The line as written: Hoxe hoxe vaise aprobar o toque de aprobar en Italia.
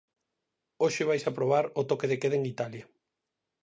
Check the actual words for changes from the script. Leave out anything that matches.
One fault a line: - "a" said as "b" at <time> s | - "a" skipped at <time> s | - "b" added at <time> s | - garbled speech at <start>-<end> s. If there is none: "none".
- "hoxe" skipped at 1.0 s
- "aprobar" said as "queda" at 2.2 s